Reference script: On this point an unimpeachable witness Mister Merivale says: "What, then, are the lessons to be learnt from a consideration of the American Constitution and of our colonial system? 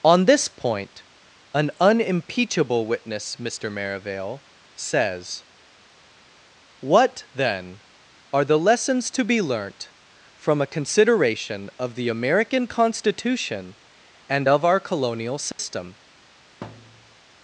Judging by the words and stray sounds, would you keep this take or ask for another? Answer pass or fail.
fail